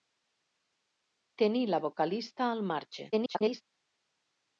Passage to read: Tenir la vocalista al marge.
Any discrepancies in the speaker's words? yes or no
yes